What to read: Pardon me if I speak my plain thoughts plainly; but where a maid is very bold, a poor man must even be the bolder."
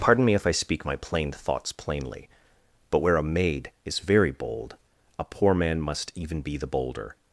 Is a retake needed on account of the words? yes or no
no